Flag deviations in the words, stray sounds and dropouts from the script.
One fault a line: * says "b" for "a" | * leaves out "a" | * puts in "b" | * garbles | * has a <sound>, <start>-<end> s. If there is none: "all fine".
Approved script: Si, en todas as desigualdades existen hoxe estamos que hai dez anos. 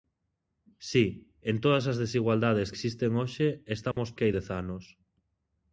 * has a dropout, 3.9-4.0 s